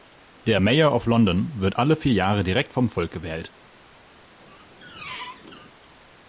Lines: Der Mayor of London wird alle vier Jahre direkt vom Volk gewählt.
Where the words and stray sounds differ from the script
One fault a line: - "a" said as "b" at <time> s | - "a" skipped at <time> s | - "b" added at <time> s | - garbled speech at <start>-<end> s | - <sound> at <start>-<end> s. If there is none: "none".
- squeak at 4.4-5.7 s